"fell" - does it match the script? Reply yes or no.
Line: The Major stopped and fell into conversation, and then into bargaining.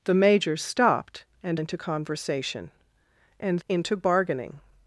no